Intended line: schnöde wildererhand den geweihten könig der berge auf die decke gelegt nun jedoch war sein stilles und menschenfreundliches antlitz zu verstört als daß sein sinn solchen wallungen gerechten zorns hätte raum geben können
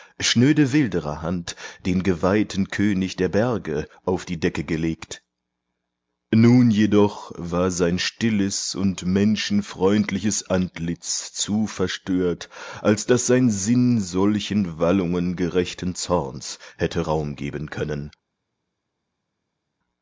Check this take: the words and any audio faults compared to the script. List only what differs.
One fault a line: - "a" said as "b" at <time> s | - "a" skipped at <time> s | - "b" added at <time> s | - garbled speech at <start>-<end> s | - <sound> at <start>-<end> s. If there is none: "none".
none